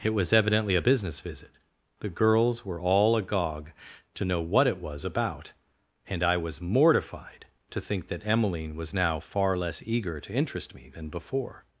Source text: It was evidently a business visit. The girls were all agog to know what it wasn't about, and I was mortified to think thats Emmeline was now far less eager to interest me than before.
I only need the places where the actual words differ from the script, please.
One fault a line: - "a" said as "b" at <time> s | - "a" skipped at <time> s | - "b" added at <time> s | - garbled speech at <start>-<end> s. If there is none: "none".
- "wasn't" said as "was" at 4.8 s
- "thats" said as "that" at 8.1 s